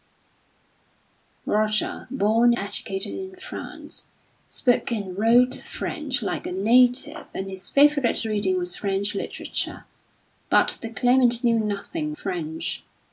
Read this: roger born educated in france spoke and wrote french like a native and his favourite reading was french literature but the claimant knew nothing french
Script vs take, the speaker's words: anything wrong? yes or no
no